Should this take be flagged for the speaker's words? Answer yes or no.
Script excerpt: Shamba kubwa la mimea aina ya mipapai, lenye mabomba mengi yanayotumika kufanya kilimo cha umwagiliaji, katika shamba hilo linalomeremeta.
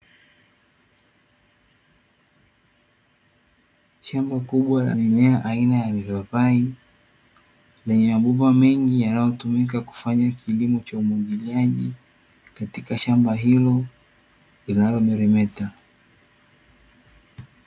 no